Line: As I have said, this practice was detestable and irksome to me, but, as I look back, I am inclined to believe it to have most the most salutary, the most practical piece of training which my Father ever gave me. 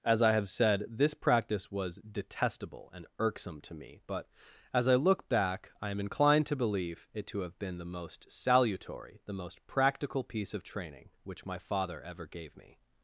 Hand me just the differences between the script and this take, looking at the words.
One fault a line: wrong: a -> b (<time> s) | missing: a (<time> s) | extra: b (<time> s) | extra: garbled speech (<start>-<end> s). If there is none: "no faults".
wrong: most -> been (7.6 s)